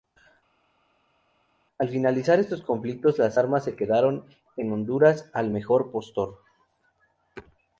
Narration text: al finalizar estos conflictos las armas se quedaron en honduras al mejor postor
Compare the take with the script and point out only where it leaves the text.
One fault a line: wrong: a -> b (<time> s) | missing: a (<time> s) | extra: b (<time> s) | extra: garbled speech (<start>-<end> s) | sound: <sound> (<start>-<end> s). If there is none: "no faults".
no faults